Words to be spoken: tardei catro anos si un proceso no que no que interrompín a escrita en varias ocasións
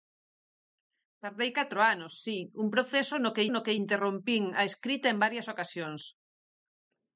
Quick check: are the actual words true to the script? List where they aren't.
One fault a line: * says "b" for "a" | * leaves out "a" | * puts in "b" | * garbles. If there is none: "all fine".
all fine